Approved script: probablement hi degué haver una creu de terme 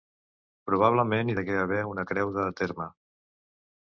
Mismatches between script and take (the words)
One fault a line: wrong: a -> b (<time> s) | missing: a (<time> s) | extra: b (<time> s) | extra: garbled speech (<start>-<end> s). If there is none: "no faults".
no faults